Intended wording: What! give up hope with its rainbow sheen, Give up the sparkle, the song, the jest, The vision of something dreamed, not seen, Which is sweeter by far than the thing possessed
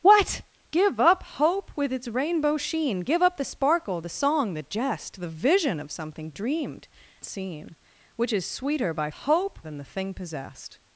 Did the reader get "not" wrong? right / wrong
wrong